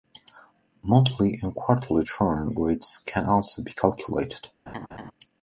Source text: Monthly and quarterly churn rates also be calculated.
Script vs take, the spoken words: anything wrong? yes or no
yes